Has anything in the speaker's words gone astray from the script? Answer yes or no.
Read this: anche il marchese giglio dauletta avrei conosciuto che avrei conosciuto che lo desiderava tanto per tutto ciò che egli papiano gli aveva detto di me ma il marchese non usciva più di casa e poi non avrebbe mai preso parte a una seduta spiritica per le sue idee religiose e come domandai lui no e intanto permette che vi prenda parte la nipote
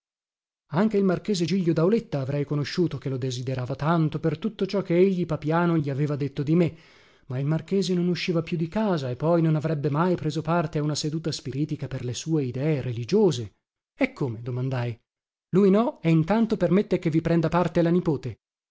yes